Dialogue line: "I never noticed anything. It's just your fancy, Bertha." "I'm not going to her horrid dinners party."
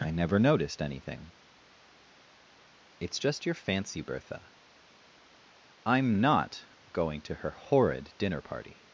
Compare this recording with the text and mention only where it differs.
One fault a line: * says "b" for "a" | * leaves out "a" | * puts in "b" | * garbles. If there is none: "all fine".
* says "dinner" for "dinners"